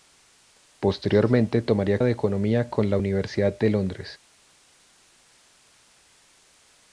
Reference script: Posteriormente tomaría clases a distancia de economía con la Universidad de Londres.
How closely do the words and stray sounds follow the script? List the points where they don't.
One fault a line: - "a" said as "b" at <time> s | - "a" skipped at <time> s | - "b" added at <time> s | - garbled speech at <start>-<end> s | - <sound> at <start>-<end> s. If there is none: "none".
- "clases a distancia" skipped at 2.0 s